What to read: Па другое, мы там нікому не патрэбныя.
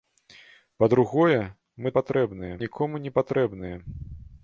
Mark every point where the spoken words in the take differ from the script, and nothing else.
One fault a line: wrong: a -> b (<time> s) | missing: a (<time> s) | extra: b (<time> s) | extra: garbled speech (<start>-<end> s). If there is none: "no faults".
wrong: там -> патрэбныя (2.0 s)